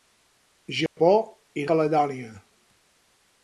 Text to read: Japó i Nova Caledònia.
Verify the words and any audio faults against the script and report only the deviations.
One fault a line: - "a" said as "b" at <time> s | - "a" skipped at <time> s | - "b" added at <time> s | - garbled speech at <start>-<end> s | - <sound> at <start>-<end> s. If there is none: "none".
- dropout at 0.9-1.0 s
- "Nova" skipped at 1.7 s